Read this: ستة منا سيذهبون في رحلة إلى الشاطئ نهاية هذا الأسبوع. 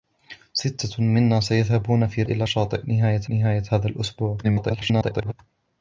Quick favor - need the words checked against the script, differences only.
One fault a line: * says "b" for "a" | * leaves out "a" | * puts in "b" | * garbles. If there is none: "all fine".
* leaves out "رحلة"
* puts in "نهاية"
* garbles